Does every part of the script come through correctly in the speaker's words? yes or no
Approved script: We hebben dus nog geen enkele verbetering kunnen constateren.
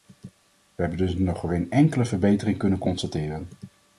yes